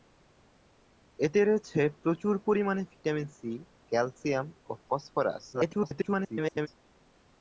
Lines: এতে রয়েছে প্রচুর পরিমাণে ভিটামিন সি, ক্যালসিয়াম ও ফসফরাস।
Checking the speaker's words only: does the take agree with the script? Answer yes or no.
no